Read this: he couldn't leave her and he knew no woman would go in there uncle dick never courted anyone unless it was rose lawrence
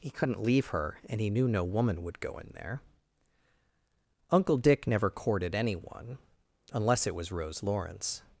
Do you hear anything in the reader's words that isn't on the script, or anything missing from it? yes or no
no